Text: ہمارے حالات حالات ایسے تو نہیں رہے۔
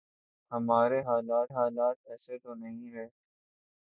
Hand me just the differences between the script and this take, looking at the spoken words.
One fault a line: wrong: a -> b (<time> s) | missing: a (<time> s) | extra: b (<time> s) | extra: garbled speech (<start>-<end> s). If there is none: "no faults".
no faults